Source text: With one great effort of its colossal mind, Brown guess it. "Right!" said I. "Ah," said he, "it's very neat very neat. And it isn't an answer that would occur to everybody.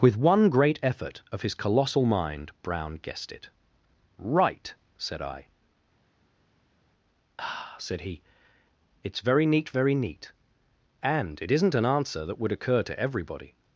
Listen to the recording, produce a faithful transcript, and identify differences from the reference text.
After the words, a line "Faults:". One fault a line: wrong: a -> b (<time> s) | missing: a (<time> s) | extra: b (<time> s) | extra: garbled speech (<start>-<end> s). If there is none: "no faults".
With one great effort of his colossal mind, Brown guessed it. "Right!" said I. "Ah," said he, "it's very neat very neat. And it isn't an answer that would occur to everybody.
Faults:
wrong: its -> his (1.4 s)
wrong: guess -> guessed (3.0 s)